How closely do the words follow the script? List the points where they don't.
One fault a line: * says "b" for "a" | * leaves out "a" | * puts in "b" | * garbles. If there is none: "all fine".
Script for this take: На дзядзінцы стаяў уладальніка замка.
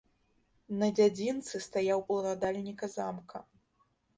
all fine